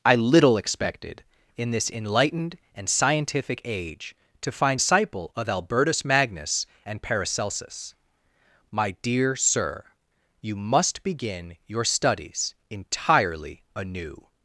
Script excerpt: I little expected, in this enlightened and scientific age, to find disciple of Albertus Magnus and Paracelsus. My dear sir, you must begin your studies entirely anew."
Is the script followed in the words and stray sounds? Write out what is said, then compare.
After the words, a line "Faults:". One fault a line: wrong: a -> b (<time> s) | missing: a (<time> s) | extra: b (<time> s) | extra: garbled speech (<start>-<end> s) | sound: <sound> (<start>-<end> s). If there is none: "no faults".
I little expected, in this enlightened and scientific age, to find disciple of Albertus Magnus and Paracelsus. My dear sir, you must begin your studies entirely anew."
Faults:
no faults